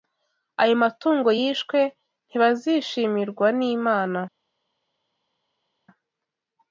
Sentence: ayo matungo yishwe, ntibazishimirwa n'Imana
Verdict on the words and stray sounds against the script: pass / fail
pass